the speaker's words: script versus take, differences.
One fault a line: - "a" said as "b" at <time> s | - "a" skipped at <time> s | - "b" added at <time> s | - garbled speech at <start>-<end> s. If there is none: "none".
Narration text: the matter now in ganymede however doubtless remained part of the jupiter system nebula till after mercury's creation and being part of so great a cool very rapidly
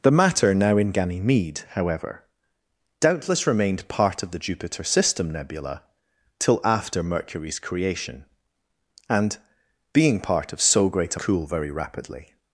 none